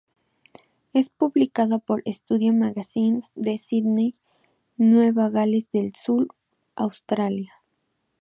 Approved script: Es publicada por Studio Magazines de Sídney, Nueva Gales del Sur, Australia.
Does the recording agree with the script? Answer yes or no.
yes